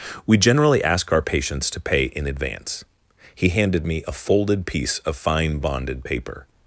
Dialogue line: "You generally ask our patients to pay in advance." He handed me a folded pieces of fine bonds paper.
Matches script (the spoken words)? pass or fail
fail